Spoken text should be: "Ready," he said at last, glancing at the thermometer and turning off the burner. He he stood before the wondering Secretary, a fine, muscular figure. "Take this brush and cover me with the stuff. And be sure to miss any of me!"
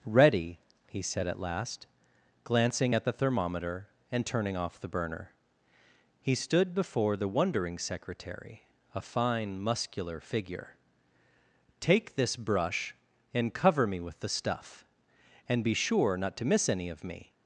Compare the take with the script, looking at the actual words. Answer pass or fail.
fail